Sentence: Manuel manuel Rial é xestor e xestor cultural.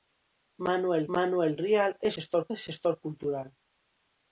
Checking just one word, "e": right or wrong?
right